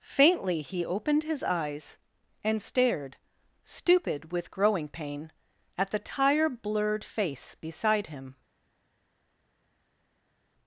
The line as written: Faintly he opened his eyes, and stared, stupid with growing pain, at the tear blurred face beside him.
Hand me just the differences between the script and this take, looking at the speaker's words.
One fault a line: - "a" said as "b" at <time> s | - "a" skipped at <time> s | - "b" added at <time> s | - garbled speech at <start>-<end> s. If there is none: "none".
- "tear" said as "tire" at 6.0 s